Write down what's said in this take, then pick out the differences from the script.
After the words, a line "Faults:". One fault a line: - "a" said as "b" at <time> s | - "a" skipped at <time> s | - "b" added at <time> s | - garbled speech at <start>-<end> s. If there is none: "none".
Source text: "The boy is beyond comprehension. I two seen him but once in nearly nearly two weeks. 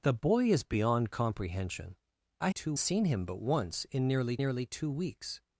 "The boy is beyond comprehension. I two seen him but once in nearly nearly two weeks.
Faults:
none